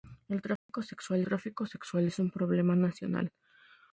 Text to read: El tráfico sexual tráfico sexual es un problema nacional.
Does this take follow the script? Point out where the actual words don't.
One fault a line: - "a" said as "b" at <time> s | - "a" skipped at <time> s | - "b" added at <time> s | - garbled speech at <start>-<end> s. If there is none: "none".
none